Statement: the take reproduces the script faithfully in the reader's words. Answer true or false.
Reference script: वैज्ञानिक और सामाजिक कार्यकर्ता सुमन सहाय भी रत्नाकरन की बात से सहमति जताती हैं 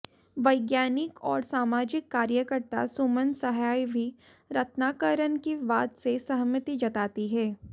true